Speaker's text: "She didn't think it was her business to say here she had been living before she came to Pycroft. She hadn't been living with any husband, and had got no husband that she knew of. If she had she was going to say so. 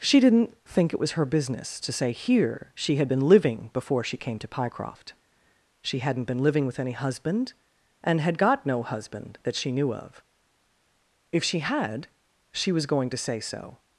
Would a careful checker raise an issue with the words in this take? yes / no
no